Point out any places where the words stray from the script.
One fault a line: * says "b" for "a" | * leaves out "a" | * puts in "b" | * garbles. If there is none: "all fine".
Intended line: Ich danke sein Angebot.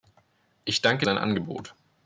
all fine